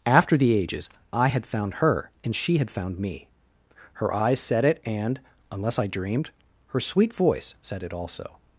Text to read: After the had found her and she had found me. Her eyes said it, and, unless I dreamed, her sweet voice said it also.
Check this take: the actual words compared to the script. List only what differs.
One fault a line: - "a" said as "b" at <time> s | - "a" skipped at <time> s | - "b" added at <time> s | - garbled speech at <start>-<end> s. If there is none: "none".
- "ages I" added at 0.6 s